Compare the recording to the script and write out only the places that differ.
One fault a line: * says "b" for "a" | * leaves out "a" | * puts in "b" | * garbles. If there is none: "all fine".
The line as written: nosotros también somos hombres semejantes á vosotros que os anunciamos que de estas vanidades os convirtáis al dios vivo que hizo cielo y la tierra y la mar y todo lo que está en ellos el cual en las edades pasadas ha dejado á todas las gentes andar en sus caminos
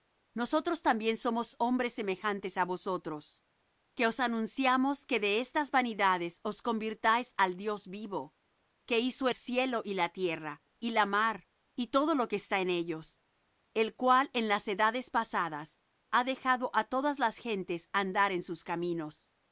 all fine